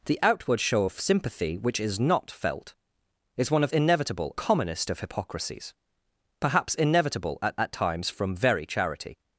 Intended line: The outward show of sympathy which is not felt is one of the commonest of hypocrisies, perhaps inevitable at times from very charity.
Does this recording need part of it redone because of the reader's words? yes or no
yes